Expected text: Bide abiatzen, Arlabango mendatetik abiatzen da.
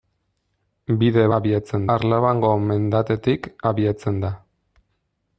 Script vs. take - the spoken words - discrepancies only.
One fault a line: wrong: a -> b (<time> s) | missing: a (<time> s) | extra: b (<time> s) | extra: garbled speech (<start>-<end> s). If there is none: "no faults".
no faults